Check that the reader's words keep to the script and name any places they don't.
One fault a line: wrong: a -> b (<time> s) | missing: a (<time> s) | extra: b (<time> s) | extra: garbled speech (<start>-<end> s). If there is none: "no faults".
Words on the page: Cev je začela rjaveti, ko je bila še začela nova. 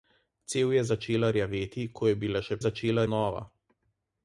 no faults